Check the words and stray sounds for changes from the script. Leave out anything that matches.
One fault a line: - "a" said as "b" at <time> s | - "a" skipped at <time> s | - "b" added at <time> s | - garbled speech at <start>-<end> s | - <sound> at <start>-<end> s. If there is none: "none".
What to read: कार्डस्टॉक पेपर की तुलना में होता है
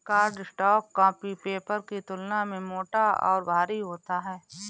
- "कॉपी" added at 0.9 s
- "मोटा और भारी" added at 2.6 s